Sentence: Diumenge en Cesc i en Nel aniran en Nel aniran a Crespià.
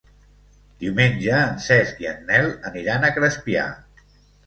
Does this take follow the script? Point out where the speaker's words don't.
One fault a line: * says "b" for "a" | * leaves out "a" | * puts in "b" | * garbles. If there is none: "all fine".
* leaves out "en Nel aniran"